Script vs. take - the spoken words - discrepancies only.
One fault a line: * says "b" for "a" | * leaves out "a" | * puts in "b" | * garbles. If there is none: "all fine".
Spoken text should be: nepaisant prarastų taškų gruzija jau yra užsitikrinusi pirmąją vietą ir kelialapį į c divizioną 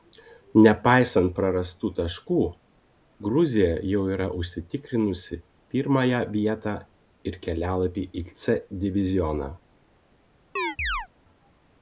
all fine